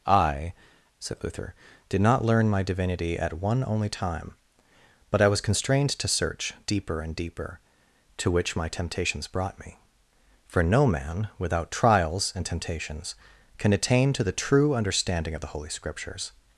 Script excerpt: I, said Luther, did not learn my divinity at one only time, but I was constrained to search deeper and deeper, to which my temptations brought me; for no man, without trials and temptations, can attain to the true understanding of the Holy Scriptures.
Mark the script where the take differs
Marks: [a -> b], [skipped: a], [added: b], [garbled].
I, said Luther, did not learn my divinity at one only time, but I was constrained to search deeper and deeper, to which my temptations brought me; for no man, without trials and temptations, can attain to the true understanding of the Holy Scriptures.